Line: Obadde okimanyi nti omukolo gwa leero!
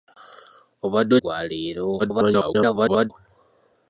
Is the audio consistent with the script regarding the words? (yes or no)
no